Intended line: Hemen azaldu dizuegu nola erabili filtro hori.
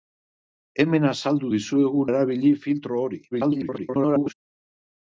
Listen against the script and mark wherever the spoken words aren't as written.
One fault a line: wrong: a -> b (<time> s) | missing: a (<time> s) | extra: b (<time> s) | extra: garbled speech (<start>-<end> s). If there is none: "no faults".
missing: nola (2.0 s)
extra: garbled speech (3.3-4.3 s)